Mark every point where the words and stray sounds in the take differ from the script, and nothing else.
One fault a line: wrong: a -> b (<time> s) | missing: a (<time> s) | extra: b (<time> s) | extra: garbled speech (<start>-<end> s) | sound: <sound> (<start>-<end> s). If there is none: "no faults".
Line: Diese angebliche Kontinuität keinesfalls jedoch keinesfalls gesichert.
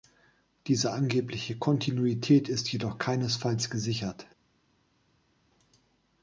wrong: keinesfalls -> ist (2.5 s)